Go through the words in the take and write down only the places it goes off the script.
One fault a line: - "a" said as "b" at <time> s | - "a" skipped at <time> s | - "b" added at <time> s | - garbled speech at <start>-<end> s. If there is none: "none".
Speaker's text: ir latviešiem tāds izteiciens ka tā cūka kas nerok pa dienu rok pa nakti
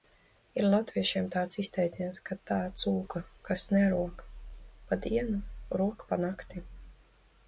none